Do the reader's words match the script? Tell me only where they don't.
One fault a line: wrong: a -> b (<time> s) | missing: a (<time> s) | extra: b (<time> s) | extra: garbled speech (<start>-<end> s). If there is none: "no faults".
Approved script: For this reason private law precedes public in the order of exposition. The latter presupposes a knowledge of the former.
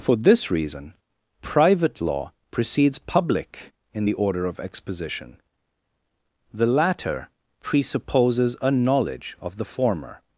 no faults